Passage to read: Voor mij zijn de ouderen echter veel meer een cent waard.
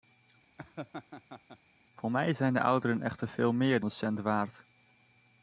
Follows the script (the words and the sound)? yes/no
no